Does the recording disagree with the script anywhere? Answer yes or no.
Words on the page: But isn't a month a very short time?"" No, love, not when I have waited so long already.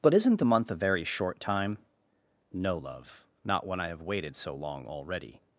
yes